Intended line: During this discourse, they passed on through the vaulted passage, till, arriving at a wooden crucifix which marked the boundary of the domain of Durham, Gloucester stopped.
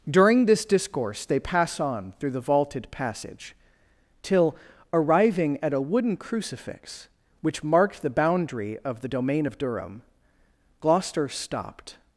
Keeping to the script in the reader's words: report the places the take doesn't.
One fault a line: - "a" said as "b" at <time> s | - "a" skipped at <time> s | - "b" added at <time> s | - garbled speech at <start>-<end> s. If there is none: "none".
- "passed" said as "pass" at 1.4 s